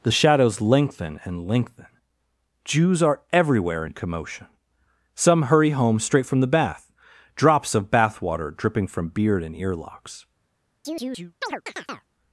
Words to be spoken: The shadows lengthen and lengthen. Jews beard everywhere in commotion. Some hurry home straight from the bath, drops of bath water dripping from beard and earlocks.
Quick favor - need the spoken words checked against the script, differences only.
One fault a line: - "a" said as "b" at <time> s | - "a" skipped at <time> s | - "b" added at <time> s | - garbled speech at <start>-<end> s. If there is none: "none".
- "beard" said as "are" at 3.0 s